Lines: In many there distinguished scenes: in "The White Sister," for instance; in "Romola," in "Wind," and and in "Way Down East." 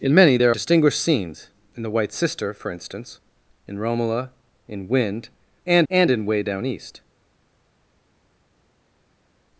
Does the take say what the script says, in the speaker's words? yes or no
yes